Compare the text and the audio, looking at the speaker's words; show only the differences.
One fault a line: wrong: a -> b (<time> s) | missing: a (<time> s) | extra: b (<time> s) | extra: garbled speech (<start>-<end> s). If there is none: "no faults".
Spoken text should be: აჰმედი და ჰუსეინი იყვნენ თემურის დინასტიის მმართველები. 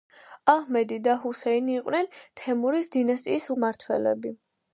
no faults